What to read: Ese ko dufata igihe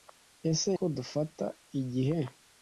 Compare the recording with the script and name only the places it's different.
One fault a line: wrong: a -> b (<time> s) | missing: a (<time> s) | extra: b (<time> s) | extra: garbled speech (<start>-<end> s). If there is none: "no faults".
no faults